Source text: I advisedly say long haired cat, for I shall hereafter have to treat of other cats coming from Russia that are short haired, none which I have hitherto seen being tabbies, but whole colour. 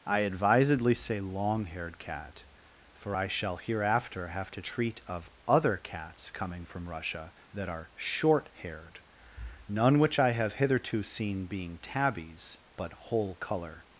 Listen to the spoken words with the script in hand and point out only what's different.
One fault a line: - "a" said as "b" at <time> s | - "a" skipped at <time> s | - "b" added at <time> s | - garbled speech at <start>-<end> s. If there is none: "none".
none